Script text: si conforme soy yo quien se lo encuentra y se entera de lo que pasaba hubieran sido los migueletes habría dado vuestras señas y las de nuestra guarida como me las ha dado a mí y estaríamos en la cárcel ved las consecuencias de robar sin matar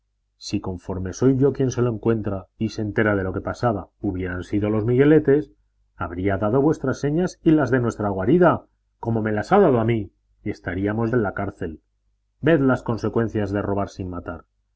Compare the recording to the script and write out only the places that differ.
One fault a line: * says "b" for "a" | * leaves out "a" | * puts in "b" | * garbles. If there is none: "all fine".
all fine